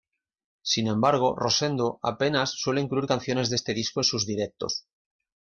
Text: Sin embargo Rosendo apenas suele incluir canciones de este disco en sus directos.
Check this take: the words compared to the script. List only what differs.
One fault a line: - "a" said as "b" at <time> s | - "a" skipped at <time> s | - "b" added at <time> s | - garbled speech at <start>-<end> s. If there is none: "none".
none